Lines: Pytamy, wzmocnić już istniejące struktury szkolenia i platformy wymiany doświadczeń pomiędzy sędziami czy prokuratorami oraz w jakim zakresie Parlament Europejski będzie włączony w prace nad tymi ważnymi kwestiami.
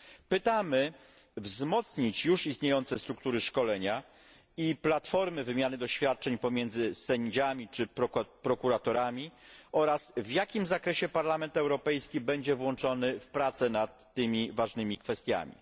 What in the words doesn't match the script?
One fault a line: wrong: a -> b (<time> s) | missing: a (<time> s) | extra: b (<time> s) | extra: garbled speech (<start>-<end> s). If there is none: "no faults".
no faults